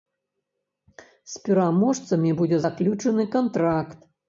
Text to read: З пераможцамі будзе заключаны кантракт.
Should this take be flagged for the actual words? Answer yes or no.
no